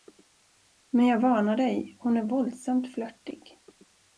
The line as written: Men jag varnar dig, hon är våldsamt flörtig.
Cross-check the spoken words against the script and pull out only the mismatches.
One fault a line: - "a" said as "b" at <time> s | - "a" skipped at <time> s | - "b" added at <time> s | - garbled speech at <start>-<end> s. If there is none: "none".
none